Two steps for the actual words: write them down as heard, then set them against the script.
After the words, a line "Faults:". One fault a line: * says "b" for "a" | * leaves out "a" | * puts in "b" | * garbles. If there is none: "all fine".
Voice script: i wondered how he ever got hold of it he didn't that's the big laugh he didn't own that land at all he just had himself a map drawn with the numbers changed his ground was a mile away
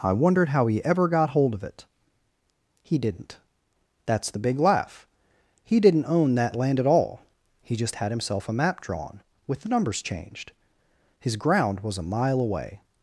i wondered how he ever got hold of it he didn't that's the big laugh he didn't own that land at all he just had himself a map drawn with the numbers changed his ground was a mile away
Faults:
all fine